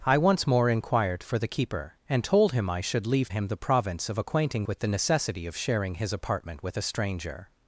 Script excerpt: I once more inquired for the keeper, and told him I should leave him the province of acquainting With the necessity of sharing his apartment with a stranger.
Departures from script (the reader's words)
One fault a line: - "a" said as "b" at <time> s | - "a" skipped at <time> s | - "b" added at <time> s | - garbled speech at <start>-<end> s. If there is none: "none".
none